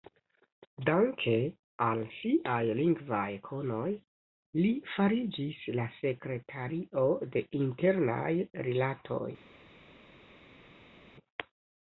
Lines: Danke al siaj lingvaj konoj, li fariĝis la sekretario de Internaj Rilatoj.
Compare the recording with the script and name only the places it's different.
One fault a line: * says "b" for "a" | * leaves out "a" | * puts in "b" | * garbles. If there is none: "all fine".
all fine